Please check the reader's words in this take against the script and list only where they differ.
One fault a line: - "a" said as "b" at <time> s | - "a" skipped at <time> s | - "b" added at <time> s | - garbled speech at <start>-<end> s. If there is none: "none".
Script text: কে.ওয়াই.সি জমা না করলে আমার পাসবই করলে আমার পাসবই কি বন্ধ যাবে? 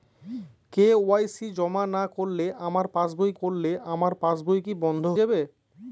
none